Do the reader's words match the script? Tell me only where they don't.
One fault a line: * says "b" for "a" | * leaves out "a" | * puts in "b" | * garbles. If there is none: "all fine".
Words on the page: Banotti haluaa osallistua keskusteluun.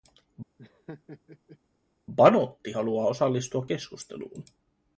all fine